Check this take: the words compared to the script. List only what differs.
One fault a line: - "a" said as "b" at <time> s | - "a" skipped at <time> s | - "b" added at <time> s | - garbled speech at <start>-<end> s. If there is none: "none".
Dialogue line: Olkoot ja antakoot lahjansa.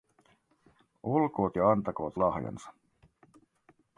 none